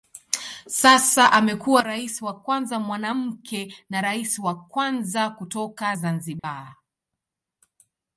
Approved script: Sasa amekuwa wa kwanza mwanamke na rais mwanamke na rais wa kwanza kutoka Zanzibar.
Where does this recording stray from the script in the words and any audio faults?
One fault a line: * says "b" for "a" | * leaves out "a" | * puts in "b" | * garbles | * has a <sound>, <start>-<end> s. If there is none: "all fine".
* puts in "rais"
* leaves out "mwanamke na rais"
* has a dropout, 6.4-6.4 s